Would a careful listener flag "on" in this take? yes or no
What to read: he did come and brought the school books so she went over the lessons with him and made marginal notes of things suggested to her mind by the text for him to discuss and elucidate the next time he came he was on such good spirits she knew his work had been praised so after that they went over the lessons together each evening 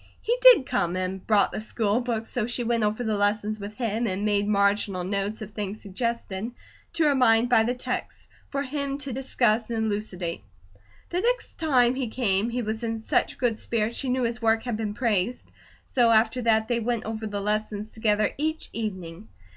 yes